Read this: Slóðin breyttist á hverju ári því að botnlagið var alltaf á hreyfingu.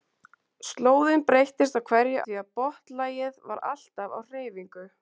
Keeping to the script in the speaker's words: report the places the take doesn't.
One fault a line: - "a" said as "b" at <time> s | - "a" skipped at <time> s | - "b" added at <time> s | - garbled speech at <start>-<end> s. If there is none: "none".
- "ári" skipped at 2.2 s